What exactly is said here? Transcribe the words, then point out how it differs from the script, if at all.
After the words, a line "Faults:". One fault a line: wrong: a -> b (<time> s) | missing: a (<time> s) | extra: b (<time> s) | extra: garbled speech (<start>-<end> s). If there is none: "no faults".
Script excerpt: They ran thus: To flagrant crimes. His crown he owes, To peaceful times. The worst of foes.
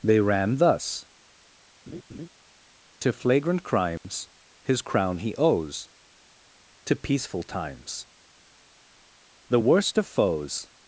They ran thus: To flagrant crimes. His crown he owes, To peaceful times. The worst of foes.
Faults:
no faults